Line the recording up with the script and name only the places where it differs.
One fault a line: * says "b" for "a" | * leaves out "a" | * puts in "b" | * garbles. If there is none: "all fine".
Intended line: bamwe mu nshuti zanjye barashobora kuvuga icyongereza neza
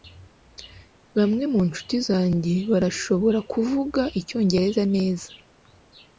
all fine